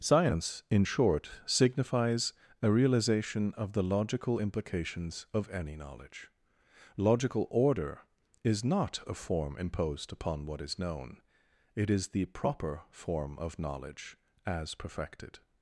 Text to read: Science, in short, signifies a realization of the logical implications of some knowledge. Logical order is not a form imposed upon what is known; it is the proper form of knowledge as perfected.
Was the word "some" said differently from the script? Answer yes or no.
yes